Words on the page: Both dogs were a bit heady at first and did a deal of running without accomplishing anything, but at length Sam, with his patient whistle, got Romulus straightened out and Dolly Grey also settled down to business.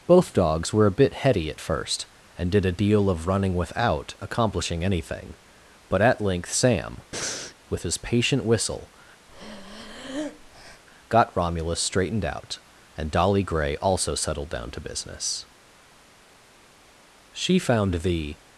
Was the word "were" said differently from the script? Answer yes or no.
no